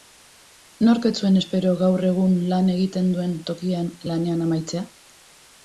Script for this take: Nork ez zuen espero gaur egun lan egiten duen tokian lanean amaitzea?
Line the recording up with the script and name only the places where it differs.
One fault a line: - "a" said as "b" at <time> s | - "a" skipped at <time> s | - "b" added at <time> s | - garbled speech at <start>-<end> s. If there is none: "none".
none